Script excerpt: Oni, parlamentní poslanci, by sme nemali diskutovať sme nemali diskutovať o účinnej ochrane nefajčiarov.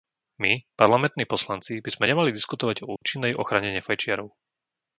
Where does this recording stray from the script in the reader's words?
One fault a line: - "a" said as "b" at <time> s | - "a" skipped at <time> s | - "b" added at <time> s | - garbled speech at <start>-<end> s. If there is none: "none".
- "Oni" said as "My" at 0.4 s
- "sme nemali diskutovať" skipped at 2.8 s